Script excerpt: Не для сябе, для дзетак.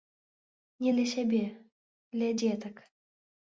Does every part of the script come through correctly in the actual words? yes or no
yes